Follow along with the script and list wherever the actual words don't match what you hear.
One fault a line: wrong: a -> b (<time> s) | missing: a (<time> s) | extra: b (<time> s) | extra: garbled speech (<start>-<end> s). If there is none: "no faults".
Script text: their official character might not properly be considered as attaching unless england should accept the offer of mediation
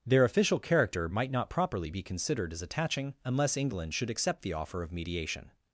no faults